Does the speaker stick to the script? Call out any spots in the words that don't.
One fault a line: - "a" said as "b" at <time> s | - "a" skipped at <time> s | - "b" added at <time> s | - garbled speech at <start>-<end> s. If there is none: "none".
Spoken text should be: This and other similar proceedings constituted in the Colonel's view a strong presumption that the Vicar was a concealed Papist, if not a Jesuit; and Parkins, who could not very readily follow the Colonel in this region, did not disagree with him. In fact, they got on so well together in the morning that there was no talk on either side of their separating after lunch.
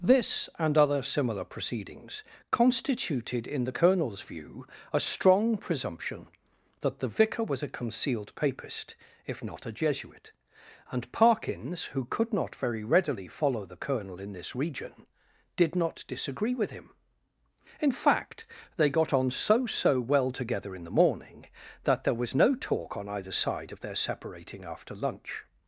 - "so" added at 19.6 s